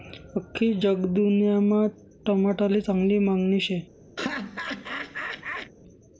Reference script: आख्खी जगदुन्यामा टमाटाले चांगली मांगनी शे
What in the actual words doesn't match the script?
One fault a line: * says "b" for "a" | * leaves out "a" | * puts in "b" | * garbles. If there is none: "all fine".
all fine